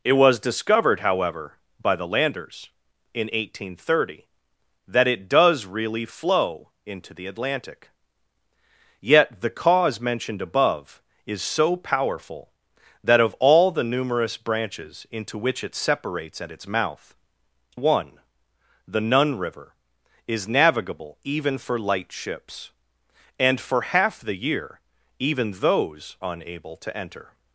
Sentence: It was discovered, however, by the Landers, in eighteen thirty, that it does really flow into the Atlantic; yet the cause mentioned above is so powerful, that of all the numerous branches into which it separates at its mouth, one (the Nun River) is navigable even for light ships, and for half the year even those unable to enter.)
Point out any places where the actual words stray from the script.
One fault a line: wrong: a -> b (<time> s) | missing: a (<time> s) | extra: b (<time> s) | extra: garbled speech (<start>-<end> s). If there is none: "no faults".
no faults